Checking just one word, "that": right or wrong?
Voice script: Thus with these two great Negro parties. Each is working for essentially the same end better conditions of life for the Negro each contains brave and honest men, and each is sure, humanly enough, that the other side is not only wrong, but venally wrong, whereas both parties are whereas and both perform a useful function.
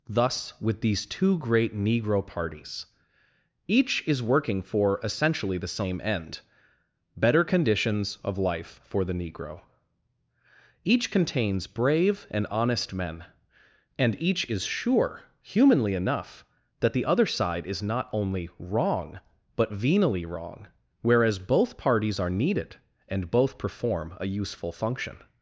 right